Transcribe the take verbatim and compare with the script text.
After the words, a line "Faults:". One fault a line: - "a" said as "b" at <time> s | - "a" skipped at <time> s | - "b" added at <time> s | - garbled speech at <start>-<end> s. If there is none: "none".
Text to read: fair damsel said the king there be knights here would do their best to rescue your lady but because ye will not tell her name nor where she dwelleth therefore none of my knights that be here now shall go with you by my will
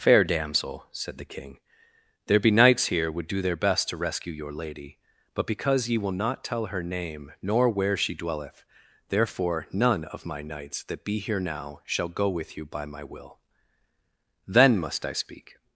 fair damsel said the king there be knights here would do their best to rescue your lady but because ye will not tell her name nor where she dwelleth therefore none of my knights that be here now shall go with you by my will then must i speak
Faults:
- "then must i speak" added at 14.5 s